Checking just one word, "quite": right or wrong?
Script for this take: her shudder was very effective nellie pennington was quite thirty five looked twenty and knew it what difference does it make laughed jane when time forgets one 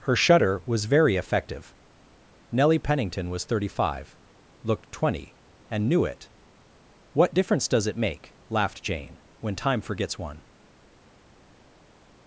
wrong